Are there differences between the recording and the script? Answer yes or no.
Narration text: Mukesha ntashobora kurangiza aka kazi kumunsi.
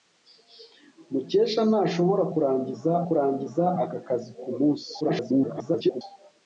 yes